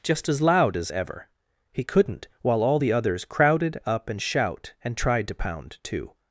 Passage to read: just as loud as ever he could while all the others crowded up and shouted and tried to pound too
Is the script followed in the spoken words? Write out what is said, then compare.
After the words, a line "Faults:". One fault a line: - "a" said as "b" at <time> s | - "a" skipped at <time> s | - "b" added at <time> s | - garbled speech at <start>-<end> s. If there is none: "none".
just as loud as ever he couldn't while all the others crowded up and shout and tried to pound too
Faults:
- "could" said as "couldn't" at 1.8 s
- "shouted" said as "shout" at 4.2 s